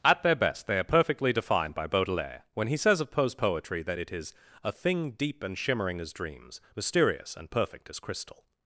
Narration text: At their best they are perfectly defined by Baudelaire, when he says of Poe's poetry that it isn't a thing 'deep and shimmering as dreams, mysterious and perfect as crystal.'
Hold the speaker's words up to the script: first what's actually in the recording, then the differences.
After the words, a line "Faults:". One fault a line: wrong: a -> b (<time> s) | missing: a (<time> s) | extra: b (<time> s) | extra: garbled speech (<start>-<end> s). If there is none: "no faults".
At their best they are perfectly defined by Baudelaire, when he says of Poe's poetry that it is a thing 'deep and shimmering as dreams, mysterious and perfect as crystal.'
Faults:
wrong: isn't -> is (4.1 s)